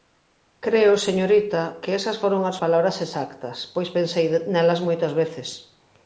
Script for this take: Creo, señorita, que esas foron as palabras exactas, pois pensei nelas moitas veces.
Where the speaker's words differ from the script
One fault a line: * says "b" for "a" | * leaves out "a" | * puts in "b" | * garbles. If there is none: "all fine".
all fine